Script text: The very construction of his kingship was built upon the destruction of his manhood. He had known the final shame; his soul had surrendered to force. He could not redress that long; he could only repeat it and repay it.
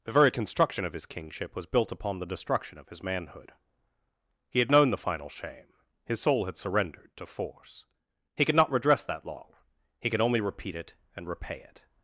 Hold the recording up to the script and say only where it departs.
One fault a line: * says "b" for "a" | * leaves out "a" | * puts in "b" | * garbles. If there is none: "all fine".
all fine